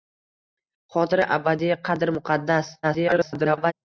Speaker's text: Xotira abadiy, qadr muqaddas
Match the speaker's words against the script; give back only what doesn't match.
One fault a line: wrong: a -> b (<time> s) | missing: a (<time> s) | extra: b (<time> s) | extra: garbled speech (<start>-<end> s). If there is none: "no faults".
extra: garbled speech (2.8-3.7 s)